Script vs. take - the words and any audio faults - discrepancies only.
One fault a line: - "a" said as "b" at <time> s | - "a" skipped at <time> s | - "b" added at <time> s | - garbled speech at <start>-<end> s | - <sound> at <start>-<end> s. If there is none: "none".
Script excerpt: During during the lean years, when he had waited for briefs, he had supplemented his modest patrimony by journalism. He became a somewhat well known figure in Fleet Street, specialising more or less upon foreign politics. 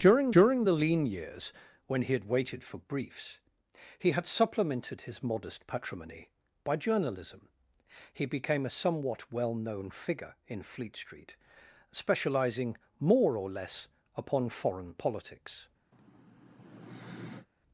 - sigh at 15.9-17.5 s